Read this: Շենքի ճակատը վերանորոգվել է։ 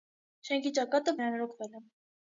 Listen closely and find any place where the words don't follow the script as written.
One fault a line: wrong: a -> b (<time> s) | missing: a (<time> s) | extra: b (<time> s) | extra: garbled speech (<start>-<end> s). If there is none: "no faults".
no faults